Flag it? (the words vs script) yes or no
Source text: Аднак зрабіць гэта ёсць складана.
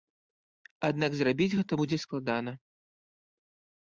yes